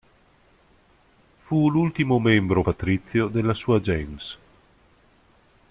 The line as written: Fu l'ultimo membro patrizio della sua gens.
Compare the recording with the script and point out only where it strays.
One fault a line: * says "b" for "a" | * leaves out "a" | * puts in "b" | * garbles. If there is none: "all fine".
all fine